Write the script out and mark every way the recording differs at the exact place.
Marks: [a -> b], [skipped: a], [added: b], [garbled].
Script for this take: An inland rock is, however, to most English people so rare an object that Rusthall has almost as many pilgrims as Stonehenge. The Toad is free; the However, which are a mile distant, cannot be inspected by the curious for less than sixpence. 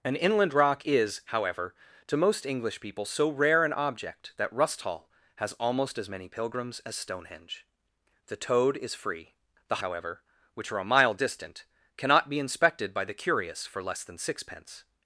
An inland rock is, however, to most English people so rare an object that Rusthall has almost as many pilgrims as Stonehenge. The Toad is free; the However, which are a mile distant, cannot be inspected by the curious for less than sixpence.